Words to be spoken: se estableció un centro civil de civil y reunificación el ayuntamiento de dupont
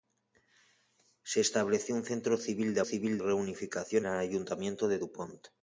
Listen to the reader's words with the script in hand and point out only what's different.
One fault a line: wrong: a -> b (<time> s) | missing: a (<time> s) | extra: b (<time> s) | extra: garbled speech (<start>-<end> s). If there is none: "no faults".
no faults